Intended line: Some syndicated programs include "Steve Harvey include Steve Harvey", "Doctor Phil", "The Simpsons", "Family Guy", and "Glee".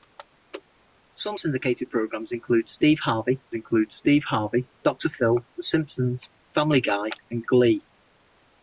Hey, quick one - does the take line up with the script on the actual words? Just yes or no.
yes